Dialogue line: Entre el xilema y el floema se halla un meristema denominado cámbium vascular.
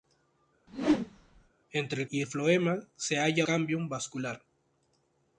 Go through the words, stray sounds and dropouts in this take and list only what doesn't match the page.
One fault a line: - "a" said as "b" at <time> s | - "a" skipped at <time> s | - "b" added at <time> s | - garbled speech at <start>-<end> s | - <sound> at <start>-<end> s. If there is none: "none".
- whoosh at 0.7-1.5 s
- "xilema" skipped at 2.1 s
- "un meristema denominado" skipped at 3.5 s